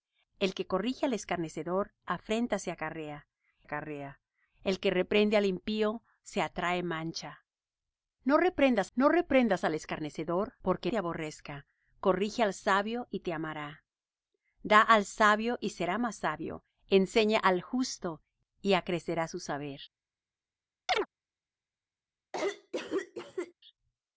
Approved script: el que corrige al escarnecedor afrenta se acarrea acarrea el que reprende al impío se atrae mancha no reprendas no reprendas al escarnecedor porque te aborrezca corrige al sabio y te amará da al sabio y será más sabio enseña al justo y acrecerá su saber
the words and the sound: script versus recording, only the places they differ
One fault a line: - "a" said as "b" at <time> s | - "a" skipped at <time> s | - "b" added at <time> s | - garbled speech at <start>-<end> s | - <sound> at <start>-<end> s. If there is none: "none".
- chirp at 20.9-21.1 s
- cough at 22.3-23.5 s